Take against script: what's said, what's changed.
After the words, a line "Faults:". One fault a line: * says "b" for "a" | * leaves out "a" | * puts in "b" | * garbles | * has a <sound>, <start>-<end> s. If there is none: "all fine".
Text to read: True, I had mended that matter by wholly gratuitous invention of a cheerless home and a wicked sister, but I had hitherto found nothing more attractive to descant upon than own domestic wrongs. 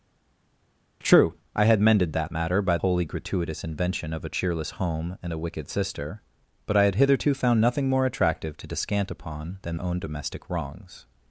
True, I had mended that matter by wholly gratuitous invention of a cheerless home and a wicked sister, but I had hitherto found nothing more attractive to descant upon than own domestic wrongs.
Faults:
all fine